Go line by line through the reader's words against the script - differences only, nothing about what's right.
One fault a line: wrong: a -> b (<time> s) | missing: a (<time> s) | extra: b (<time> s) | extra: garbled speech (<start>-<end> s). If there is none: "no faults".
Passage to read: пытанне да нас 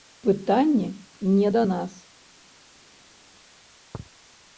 extra: не (1.2 s)